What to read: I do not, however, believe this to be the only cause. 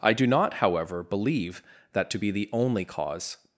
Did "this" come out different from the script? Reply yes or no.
yes